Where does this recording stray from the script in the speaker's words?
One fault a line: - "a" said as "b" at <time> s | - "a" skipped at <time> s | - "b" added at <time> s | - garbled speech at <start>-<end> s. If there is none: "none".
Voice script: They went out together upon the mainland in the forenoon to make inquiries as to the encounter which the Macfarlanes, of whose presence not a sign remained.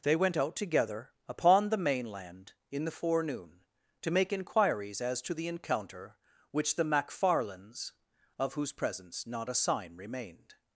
none